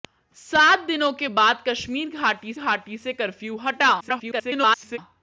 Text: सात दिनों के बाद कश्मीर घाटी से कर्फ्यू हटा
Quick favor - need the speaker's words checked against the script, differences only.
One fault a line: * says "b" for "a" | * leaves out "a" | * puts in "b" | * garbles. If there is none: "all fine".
* puts in "घाटी"
* garbles